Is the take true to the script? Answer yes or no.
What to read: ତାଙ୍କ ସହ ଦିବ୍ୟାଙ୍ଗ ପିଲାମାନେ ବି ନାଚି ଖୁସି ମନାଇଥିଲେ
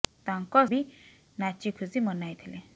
no